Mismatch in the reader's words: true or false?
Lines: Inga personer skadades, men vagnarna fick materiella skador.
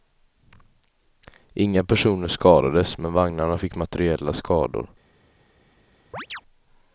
false